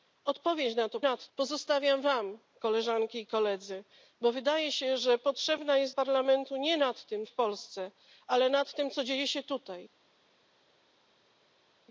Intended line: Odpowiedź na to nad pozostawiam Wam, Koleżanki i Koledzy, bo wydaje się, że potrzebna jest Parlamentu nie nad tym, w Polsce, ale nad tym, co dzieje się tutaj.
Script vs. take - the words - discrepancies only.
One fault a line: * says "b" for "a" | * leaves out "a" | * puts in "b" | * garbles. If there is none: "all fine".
all fine